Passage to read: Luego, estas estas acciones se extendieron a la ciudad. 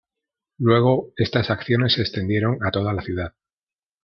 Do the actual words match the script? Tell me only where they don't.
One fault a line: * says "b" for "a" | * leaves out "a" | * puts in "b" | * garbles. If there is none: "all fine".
* leaves out "estas"
* puts in "toda"